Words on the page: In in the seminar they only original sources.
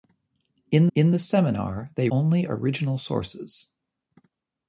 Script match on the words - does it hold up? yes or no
yes